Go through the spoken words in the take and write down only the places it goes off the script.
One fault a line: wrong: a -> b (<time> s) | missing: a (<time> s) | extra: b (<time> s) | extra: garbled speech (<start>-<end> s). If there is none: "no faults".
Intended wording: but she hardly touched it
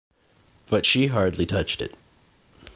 no faults